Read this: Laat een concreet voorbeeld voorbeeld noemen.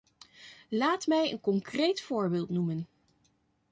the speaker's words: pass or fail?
fail